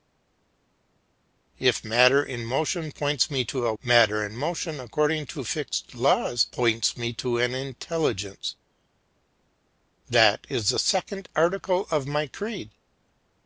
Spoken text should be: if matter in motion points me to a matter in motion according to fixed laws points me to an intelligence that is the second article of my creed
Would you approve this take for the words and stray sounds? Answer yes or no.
yes